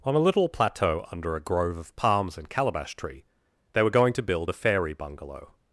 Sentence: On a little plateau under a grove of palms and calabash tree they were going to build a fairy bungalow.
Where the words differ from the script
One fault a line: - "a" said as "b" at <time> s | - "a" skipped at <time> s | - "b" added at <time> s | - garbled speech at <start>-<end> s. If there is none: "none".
none